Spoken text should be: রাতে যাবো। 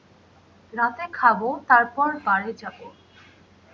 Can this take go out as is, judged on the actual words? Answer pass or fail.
fail